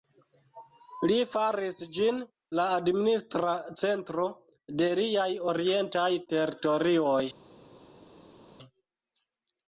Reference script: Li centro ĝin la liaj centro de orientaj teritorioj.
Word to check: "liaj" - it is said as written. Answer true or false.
false